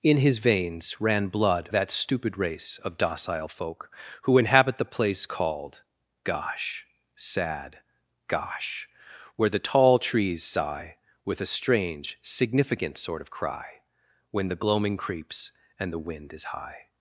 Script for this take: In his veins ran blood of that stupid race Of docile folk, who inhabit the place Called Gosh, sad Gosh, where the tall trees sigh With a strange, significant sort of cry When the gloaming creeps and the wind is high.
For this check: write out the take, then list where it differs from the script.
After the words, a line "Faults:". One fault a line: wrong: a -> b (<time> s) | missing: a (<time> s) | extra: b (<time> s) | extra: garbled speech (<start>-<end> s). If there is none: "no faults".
In his veins ran blood that stupid race Of docile folk, who inhabit the place Called Gosh, sad Gosh, where the tall trees sigh With a strange, significant sort of cry When the gloaming creeps and the wind is high.
Faults:
missing: of (1.7 s)